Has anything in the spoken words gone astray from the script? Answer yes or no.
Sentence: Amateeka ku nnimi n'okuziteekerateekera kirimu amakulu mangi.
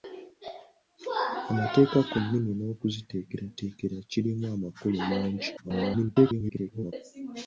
yes